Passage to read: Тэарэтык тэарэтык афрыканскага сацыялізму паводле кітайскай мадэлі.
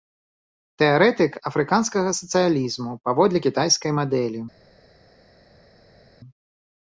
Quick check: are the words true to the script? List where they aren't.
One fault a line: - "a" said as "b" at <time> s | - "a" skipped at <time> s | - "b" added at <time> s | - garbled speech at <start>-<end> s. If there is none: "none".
- "тэарэтык" skipped at 1.3 s